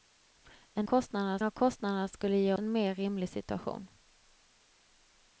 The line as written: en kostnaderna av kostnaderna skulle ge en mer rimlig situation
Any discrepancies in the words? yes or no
no